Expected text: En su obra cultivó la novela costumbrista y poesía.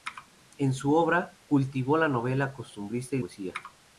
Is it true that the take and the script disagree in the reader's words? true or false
false